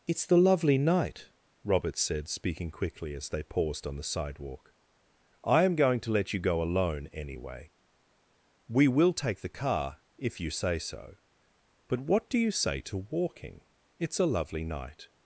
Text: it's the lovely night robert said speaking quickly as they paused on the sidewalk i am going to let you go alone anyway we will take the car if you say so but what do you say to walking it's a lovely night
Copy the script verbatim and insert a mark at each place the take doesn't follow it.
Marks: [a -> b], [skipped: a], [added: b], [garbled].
it's the lovely night robert said speaking quickly as they paused on the sidewalk i am going to let you go alone anyway we will take the car if you say so but what do you say to walking it's a lovely night